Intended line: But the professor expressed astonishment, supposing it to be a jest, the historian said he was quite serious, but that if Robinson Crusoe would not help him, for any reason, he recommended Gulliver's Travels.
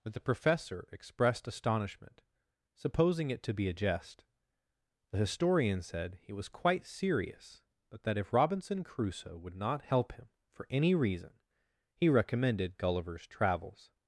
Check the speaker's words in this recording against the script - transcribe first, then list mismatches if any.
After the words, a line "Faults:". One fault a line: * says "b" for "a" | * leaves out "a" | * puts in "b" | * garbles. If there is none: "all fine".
But the professor expressed astonishment, supposing it to be a jest, the historian said he was quite serious, but that if Robinson Crusoe would not help him, for any reason, he recommended Gulliver's Travels.
Faults:
all fine